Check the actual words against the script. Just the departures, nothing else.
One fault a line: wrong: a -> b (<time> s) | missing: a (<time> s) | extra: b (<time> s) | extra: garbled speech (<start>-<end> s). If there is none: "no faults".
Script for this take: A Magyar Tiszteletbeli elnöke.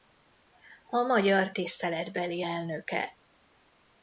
no faults